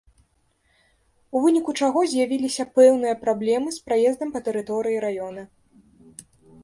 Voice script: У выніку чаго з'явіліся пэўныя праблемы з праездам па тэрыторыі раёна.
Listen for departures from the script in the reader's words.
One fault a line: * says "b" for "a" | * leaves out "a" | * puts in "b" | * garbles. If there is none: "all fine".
all fine